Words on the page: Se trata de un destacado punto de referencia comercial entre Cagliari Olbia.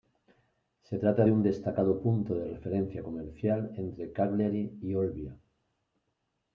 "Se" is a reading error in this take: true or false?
false